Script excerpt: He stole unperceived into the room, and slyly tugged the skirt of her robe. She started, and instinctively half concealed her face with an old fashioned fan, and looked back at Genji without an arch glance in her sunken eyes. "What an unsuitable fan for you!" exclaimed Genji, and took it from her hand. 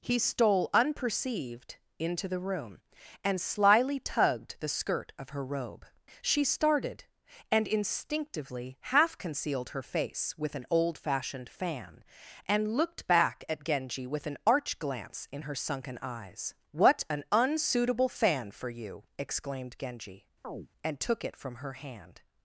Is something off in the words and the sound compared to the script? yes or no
yes